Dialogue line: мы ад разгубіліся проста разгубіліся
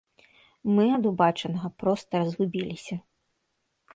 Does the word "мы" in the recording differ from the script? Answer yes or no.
no